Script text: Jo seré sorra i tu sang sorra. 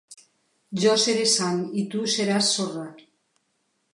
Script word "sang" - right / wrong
wrong